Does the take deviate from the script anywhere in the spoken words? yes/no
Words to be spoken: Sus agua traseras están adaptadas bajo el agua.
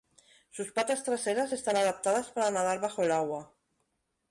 yes